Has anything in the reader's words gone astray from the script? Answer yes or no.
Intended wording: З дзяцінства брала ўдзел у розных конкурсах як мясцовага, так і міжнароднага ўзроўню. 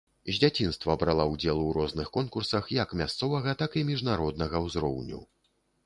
no